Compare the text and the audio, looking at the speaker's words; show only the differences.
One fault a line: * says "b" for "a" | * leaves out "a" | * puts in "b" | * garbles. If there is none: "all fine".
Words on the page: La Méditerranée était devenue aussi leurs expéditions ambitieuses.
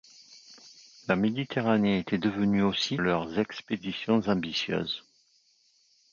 all fine